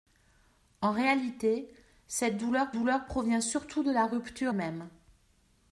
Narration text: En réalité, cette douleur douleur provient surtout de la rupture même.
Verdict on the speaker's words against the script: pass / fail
pass